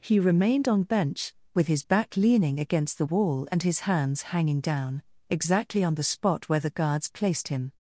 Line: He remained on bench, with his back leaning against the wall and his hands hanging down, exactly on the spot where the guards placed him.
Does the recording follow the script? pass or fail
pass